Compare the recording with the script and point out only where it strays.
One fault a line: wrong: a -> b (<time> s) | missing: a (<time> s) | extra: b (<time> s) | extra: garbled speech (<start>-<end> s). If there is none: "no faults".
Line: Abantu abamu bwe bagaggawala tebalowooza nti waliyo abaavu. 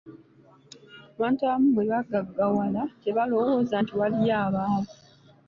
no faults